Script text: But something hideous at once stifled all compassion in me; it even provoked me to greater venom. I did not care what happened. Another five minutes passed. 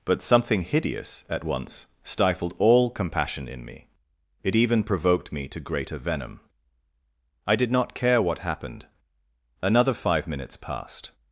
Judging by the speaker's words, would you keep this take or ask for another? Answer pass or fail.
pass